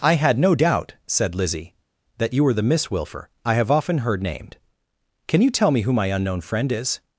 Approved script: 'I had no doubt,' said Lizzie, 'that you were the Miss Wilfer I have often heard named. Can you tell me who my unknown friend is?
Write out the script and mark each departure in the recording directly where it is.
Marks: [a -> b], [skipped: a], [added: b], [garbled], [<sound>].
'I had no doubt,' said Lizzie, 'that you were the Miss Wilfer I have often heard named. Can you tell me who my unknown friend is?